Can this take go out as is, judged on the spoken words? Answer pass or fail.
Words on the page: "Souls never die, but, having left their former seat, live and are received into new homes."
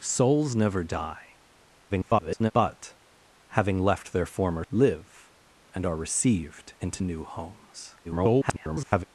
fail